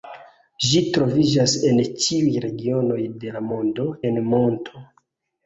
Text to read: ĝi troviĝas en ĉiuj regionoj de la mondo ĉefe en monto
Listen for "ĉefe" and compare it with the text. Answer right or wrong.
wrong